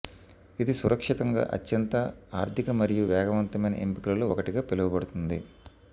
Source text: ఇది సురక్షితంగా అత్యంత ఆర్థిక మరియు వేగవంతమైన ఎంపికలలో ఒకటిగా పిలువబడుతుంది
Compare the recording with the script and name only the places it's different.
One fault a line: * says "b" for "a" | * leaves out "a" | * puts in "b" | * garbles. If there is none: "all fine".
all fine